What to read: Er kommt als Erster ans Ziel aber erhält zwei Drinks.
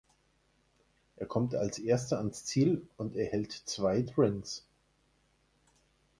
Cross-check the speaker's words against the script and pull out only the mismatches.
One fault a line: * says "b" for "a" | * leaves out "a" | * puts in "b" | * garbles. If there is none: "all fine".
* says "und" for "aber"